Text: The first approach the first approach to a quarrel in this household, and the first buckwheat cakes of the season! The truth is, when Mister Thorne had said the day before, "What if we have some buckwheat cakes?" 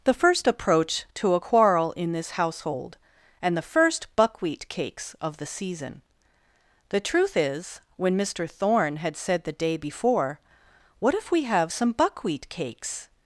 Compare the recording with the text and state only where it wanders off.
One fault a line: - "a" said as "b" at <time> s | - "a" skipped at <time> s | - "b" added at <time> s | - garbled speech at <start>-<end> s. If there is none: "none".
- "the first approach" skipped at 1.1 s